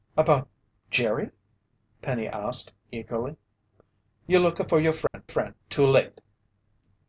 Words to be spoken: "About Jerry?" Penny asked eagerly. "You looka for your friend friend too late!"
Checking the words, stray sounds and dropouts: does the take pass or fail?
fail